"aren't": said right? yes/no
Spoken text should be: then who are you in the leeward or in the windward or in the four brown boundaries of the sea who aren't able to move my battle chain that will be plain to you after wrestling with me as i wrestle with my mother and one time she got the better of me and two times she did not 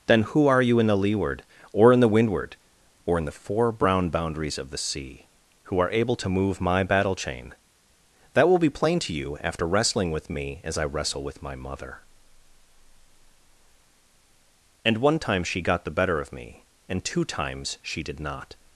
no